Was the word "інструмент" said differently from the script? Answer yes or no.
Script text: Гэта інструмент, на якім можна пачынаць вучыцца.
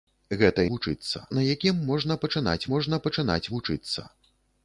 yes